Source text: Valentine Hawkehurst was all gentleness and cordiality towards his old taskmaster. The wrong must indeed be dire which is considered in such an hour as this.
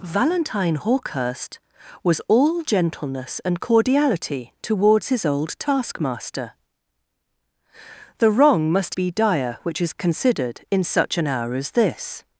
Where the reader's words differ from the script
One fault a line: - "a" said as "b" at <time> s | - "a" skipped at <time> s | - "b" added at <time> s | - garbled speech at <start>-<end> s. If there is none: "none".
- "indeed" skipped at 9.0 s